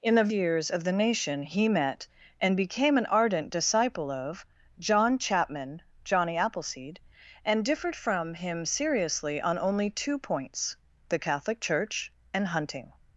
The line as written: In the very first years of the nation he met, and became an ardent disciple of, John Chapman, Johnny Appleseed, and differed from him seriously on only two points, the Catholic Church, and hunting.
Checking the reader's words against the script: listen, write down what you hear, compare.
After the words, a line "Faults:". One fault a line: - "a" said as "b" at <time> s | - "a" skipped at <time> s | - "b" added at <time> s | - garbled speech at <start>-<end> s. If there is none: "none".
In the years of the nation he met, and became an ardent disciple of, John Chapman, Johnny Appleseed, and differed from him seriously on only two points, the Catholic Church, and hunting.
Faults:
- "very first" skipped at 0.3 s